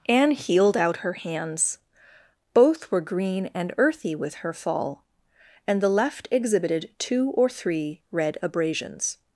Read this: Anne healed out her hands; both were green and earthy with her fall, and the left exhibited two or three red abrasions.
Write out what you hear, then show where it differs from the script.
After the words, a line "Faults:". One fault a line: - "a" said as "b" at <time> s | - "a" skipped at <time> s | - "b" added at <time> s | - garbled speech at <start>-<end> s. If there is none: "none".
Anne healed out her hands; both were green and earthy with her fall, and the left exhibited two or three red abrasions.
Faults:
none